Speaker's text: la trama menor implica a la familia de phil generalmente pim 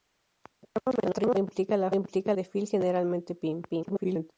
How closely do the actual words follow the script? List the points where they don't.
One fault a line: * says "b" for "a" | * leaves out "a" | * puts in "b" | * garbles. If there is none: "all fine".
* leaves out "menor"
* says "implica" for "familia"
* garbles